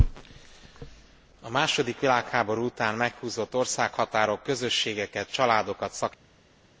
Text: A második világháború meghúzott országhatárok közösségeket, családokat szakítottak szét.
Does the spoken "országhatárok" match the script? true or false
true